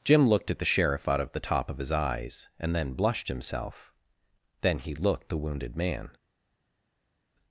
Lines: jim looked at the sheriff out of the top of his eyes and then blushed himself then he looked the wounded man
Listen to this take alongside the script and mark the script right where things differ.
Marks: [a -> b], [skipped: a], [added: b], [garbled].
jim looked at the sheriff out of the top of his eyes and then blushed himself then he looked the wounded man